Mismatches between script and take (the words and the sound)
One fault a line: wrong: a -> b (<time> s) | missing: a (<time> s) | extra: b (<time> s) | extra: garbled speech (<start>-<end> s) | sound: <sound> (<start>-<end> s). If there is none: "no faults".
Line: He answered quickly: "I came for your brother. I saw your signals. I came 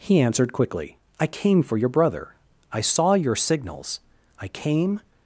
no faults